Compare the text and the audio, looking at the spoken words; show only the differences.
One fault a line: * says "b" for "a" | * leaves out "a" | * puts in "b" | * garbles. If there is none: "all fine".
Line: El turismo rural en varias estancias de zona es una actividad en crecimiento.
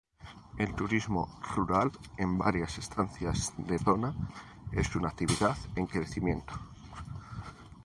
all fine